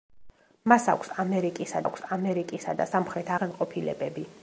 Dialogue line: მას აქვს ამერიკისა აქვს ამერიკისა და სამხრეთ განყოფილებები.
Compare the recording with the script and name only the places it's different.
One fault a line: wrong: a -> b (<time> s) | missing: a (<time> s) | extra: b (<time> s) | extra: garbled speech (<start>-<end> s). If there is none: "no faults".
no faults